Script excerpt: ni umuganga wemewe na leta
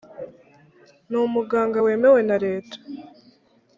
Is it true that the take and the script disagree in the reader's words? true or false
false